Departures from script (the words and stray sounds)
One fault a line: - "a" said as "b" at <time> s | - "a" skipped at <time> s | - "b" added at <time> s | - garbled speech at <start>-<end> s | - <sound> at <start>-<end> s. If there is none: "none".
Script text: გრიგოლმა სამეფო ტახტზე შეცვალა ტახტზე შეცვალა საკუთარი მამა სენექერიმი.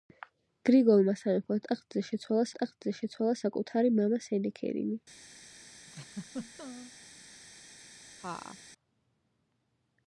- laugh at 5.9-6.9 s
- laugh at 8.2-8.6 s